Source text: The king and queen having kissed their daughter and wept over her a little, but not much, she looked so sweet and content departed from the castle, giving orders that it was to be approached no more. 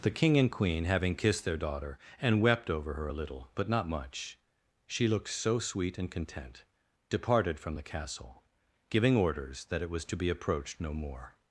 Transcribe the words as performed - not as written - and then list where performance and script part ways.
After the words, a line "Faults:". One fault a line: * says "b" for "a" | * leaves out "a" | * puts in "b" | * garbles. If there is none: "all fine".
The king and queen having kissed their daughter and wept over her a little, but not much, she looked so sweet and content departed from the castle, giving orders that it was to be approached no more.
Faults:
all fine